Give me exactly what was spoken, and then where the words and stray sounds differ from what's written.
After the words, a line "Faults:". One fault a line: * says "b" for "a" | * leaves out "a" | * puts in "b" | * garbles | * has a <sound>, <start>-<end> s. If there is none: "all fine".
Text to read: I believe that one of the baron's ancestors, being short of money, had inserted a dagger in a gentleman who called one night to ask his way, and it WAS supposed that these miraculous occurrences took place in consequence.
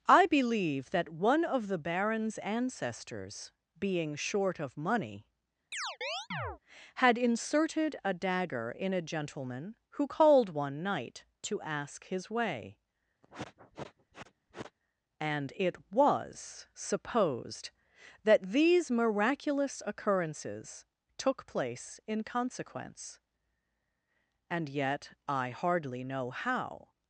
I believe that one of the baron's ancestors, being short of money, had inserted a dagger in a gentleman who called one night to ask his way, and it WAS supposed that these miraculous occurrences took place in consequence. And yet I hardly know how
Faults:
* has a chirp, 5.7-6.6 s
* has a sniff, 13.2-14.8 s
* puts in "And yet I hardly know how"